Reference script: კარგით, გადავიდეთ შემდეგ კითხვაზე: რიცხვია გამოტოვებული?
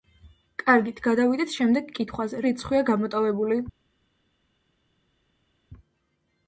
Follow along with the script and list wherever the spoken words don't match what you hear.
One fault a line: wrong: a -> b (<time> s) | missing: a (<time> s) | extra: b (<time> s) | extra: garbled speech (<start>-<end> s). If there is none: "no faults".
no faults